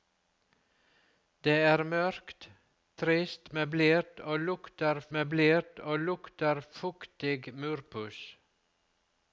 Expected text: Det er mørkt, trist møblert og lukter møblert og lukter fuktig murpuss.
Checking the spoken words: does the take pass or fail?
pass